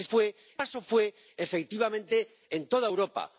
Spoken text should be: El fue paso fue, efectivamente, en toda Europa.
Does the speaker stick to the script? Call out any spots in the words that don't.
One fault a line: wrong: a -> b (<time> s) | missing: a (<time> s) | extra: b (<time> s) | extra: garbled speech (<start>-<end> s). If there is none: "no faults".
no faults